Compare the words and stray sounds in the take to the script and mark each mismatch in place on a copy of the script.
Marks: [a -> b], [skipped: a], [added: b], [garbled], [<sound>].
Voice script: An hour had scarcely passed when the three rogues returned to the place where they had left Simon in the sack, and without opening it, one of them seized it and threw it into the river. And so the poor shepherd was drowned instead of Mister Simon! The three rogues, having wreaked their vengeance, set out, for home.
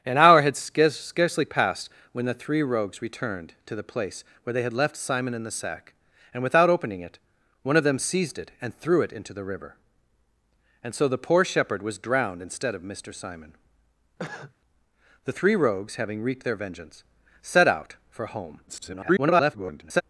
An hour had scarcely passed when the three rogues returned to the place where they had left Simon in the sack, and without opening it, one of them seized it and threw it into the river. And so the poor shepherd was drowned instead of Mister Simon! [cough] The three rogues, having wreaked their vengeance, set out, for home. [garbled]